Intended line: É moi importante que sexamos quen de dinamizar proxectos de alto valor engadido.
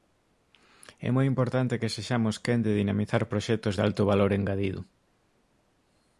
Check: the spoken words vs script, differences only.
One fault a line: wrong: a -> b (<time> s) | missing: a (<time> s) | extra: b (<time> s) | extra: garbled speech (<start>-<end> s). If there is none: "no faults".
no faults